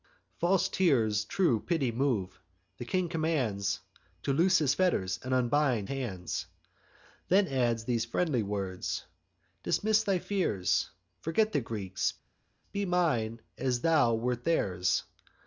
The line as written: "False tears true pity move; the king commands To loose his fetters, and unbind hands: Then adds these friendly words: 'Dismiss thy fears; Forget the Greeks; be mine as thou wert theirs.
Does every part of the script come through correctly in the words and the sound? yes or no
yes